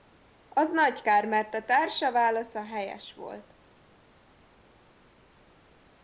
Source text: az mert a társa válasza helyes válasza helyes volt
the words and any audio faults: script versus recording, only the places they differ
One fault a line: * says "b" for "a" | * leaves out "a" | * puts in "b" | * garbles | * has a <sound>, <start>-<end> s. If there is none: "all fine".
* puts in "nagy kár"
* leaves out "válasza helyes"